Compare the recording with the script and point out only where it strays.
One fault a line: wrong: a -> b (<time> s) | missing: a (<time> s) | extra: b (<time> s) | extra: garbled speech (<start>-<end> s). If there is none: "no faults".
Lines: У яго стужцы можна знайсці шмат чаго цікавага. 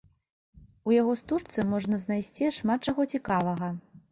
no faults